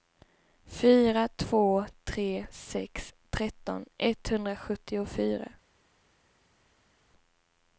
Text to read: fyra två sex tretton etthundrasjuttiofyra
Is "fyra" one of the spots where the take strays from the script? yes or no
no